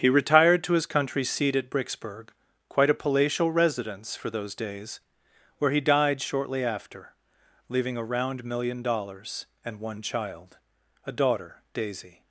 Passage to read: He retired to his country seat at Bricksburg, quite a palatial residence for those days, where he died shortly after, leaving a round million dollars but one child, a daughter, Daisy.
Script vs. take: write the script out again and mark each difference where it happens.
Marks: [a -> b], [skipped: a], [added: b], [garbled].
He retired to his country seat at Bricksburg, quite a palatial residence for those days, where he died shortly after, leaving a round million dollars [but -> and] one child, a daughter, Daisy.